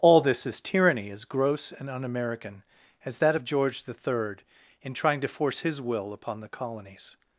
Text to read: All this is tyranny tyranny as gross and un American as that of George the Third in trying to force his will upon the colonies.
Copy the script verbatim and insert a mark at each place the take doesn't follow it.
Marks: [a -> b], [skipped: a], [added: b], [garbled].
All this is tyranny [skipped: tyranny] as gross and un American as that of George the Third in trying to force his will upon the colonies.